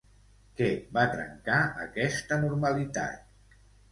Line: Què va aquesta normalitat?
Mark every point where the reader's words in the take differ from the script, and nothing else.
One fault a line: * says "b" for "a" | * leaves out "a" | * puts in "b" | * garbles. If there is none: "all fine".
* puts in "trencar"